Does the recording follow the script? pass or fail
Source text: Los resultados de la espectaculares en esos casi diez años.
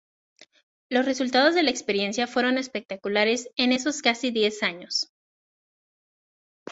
fail